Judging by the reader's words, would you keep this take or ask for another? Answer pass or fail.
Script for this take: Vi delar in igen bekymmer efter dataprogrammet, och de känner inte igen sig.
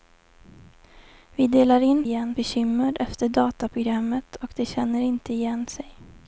pass